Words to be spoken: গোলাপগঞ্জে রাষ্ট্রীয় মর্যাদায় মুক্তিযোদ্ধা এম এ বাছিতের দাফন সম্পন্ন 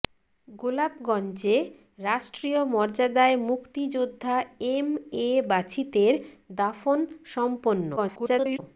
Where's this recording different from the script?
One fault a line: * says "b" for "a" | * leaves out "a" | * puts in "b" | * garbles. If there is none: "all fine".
* garbles